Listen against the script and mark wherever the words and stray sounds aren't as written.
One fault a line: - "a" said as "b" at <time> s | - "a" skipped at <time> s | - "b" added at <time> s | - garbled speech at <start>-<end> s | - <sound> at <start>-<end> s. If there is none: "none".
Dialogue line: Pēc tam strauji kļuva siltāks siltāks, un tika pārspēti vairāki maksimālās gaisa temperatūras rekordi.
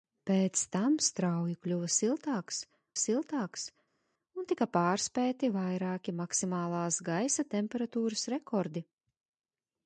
none